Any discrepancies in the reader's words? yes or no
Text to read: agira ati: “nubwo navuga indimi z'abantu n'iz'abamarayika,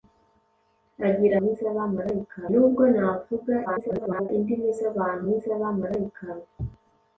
yes